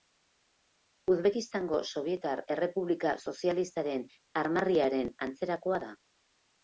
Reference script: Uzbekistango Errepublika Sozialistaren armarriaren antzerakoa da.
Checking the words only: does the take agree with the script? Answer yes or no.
no